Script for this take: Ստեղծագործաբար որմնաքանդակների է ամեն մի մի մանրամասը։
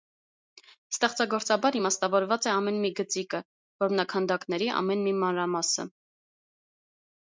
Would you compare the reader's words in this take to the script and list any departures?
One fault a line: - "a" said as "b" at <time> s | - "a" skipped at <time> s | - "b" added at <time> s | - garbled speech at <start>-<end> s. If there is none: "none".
- "որմնաքանդակների" said as "իմաստավորված" at 1.8 s
- "գծիկը որմնաքանդակների ամեն" added at 3.0 s